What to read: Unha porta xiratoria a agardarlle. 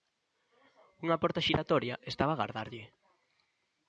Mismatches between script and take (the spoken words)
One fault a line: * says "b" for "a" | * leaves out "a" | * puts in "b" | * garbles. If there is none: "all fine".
* puts in "estaba"